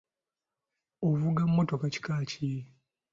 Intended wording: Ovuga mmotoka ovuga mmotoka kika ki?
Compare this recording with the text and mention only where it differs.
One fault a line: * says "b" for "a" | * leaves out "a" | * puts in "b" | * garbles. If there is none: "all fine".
* leaves out "ovuga mmotoka"